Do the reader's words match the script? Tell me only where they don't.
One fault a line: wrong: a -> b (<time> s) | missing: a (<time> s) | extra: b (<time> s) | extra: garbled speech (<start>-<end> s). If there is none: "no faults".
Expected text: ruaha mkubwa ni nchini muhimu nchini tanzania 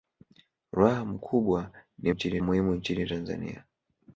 no faults